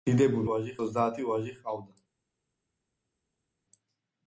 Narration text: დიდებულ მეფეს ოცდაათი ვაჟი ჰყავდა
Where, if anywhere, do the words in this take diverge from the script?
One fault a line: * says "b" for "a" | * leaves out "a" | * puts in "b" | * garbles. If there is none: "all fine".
* says "ვაჟი" for "მეფეს"